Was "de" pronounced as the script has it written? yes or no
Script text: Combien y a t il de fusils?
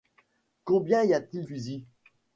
no